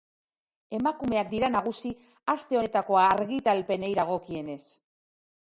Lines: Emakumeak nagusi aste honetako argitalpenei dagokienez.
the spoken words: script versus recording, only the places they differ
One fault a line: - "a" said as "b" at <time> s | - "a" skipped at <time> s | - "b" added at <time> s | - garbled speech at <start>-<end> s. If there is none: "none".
- "dira" added at 1.3 s